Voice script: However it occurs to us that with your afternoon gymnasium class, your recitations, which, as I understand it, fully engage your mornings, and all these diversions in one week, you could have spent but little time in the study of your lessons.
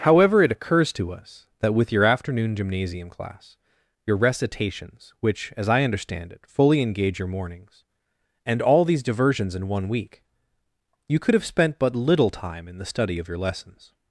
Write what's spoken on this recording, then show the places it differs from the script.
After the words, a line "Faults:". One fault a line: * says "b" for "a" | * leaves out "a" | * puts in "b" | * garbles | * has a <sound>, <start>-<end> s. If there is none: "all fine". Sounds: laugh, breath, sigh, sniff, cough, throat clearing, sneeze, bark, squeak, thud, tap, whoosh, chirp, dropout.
However it occurs to us that with your afternoon gymnasium class, your recitations, which, as I understand it, fully engage your mornings, and all these diversions in one week, you could have spent but little time in the study of your lessons.
Faults:
all fine